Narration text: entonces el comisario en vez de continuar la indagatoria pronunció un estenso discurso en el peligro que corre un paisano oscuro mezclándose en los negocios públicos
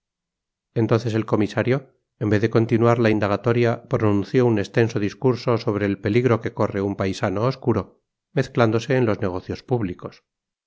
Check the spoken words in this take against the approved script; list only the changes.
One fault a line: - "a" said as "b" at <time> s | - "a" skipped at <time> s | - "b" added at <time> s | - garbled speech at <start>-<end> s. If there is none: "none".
- "en" said as "sobre" at 5.6 s